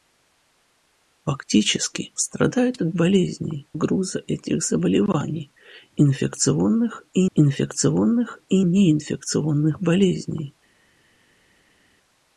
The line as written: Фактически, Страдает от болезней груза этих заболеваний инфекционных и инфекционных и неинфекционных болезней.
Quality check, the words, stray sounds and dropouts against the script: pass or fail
pass